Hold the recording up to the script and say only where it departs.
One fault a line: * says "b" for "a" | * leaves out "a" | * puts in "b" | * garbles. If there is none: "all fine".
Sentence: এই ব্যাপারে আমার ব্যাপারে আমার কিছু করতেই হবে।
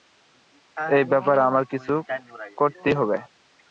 * leaves out "ব্যাপারে আমার"